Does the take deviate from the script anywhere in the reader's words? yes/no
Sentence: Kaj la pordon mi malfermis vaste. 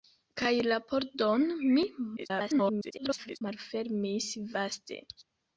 yes